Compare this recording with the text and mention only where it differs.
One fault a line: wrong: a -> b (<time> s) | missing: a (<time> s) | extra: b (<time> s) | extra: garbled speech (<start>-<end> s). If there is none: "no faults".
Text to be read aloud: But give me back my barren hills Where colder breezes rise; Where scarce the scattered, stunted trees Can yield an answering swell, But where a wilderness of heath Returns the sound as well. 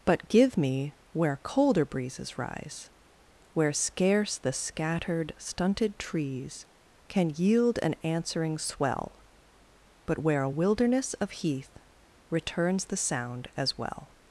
missing: back my barren hills (0.9 s)